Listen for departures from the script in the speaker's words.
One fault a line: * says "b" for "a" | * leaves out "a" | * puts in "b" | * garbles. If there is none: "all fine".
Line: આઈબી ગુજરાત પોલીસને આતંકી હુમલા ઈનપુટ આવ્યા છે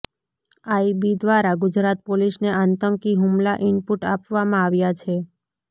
* puts in "દ્વારા"
* puts in "આપવામાં"